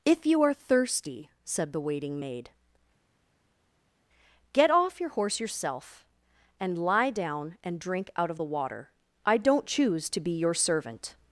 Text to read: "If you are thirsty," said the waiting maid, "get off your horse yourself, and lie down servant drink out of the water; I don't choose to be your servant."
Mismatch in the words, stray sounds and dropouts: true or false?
true